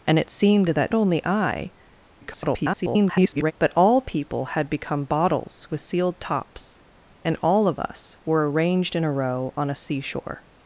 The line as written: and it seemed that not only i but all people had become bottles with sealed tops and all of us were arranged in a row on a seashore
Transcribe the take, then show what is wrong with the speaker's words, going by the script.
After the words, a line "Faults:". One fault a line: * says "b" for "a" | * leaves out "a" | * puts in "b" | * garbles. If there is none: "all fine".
and it seemed that only i [garbled] but all people had become bottles with sealed tops and all of us were arranged in a row on a seashore
Faults:
* leaves out "not"
* garbles